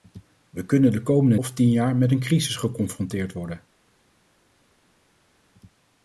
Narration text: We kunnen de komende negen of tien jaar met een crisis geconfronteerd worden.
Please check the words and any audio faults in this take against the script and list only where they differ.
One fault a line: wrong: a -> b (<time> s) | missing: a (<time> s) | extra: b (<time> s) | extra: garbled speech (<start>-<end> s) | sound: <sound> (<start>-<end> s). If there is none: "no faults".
missing: negen (1.4 s)